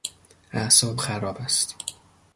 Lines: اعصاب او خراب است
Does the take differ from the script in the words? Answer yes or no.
yes